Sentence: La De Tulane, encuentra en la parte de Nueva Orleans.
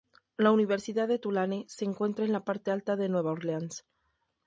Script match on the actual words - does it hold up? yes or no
no